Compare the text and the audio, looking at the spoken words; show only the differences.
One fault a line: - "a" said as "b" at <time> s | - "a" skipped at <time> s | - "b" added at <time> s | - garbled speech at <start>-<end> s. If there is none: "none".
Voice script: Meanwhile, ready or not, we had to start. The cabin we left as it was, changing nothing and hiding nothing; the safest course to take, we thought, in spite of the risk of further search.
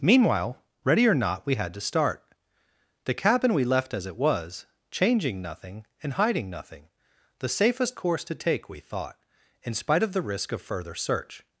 none